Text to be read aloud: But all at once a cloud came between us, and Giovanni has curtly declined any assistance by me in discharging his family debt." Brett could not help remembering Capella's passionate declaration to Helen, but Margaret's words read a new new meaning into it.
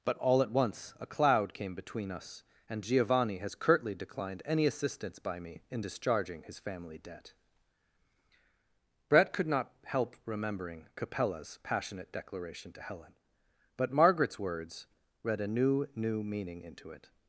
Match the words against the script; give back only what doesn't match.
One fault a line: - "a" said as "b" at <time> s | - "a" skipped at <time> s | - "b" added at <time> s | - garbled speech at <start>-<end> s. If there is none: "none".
none